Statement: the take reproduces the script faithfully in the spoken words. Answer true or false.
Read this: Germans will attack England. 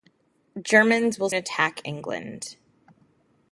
true